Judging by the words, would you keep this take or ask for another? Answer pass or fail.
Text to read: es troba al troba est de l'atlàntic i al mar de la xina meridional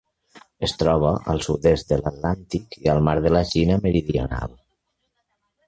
fail